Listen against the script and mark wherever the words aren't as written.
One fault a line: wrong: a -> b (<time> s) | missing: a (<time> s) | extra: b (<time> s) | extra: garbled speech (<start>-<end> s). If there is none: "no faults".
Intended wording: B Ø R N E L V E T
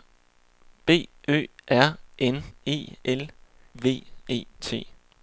no faults